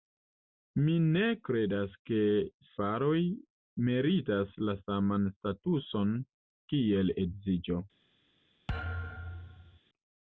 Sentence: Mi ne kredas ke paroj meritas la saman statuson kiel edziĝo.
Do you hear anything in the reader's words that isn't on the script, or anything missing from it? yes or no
no